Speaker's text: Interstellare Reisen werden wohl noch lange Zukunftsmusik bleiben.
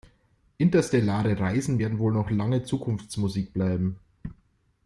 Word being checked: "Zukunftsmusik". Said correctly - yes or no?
yes